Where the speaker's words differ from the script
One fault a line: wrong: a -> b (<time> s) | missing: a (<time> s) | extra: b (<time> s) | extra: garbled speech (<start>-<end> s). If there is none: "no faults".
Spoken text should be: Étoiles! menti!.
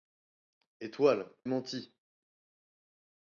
no faults